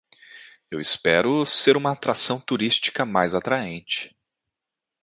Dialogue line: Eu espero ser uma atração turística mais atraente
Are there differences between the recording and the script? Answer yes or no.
no